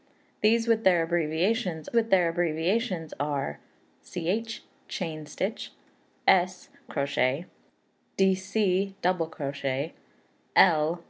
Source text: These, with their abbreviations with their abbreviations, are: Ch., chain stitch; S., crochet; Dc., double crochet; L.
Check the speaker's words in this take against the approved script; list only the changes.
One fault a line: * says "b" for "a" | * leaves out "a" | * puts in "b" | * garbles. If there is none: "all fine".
all fine